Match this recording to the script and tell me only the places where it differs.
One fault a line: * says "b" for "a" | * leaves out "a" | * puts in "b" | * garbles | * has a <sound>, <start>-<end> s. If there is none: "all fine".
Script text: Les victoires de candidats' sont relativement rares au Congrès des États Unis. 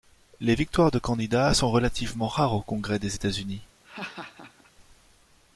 * has a laugh, 3.8-4.7 s